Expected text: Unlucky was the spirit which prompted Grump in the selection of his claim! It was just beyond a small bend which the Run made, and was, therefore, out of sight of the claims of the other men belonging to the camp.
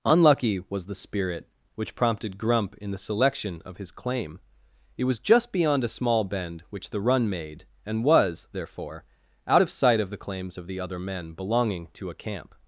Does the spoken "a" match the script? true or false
true